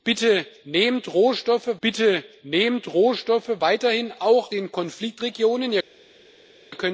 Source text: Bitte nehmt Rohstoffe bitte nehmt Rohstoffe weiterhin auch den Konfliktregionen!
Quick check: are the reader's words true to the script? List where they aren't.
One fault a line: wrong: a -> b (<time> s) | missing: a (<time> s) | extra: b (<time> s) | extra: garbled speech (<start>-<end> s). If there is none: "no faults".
no faults